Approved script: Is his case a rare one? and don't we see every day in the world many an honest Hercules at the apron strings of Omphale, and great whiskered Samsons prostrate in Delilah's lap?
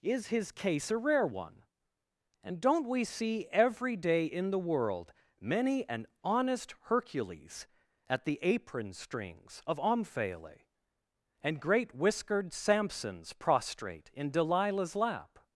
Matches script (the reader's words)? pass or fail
pass